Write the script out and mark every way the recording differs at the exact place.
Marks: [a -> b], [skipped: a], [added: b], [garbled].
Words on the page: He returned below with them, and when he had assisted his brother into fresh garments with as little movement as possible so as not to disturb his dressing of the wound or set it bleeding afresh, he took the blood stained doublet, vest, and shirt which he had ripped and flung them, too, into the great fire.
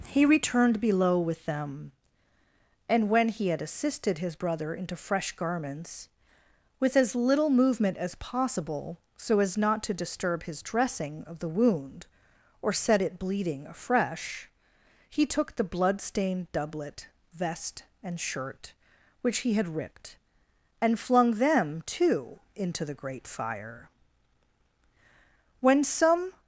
He returned below with them, and when he had assisted his brother into fresh garments with as little movement as possible so as not to disturb his dressing of the wound or set it bleeding afresh, he took the blood stained doublet, vest, and shirt which he had ripped and flung them, too, into the great fire. [added: When some]